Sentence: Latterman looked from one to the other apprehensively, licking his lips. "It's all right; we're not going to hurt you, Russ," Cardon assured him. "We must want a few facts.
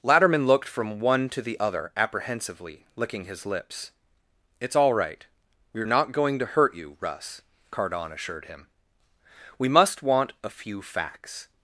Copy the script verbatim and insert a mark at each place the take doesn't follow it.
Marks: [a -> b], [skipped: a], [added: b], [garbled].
Latterman looked from one to the other apprehensively, licking his lips. "It's all right; we're not going to hurt you, Russ," Cardon assured him. "We must want a few facts.